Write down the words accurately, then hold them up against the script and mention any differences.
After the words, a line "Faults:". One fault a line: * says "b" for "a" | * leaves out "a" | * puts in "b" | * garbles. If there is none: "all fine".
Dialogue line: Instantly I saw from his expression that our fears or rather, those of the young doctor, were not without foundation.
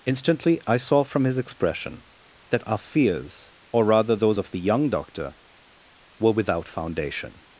Instantly I saw from his expression that our fears or rather, those of the young doctor, were without foundation.
Faults:
* leaves out "not"